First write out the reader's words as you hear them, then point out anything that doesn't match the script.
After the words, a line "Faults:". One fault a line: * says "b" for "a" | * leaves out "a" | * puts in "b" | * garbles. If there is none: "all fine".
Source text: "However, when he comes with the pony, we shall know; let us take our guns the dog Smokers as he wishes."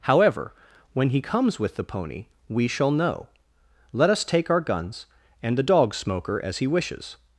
"However, when he comes with the pony, we shall know; let us take our guns and the dog Smoker as he wishes."
Faults:
* puts in "and"
* says "Smoker" for "Smokers"